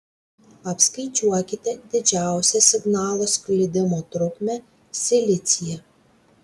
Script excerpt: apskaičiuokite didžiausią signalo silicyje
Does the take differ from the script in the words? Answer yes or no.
yes